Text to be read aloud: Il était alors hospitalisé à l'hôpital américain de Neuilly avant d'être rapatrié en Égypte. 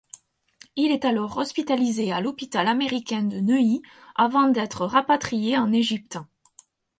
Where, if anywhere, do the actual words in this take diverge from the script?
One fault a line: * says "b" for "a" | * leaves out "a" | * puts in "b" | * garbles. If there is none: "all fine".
* says "est" for "était"